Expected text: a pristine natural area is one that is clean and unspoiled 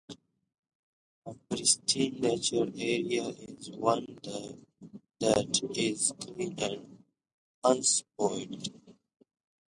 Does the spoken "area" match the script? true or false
true